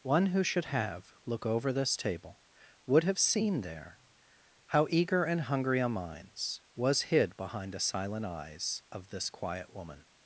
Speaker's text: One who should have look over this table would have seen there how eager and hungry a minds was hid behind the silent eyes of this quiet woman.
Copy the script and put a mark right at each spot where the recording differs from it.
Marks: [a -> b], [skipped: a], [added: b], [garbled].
One who should have look over this table would have seen there how eager and hungry a minds was hid behind the silent eyes of this quiet woman.